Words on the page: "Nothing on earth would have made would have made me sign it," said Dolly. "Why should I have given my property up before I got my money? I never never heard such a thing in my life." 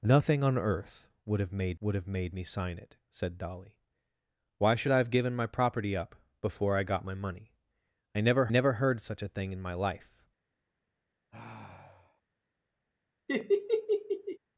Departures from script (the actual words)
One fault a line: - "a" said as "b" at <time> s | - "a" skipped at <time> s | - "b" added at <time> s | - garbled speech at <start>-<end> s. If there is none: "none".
none